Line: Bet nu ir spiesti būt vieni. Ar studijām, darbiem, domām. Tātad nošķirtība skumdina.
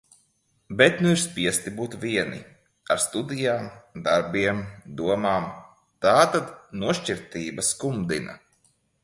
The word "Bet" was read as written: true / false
true